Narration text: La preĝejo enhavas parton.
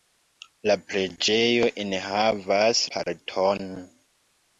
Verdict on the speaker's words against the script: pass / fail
pass